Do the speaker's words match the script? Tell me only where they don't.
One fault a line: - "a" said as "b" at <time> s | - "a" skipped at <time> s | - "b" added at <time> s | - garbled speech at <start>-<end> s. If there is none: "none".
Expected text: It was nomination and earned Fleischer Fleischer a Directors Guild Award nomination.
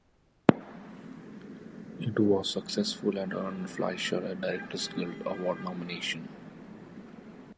- "nomination" said as "successful" at 2.5 s
- "Fleischer" skipped at 4.2 s